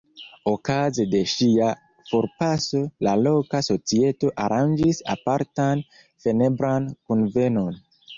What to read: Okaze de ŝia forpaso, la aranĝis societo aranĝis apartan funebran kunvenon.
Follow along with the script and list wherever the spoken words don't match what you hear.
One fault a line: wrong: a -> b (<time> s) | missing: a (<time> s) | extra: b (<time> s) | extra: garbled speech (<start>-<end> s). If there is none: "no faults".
wrong: aranĝis -> loka (3.2 s)